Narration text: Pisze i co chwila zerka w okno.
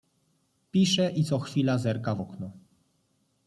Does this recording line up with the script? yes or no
yes